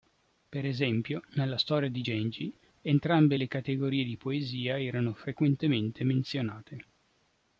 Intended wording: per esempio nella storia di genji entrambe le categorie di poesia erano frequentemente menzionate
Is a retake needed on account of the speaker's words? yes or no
no